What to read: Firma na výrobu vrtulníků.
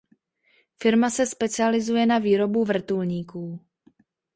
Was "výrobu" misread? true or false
false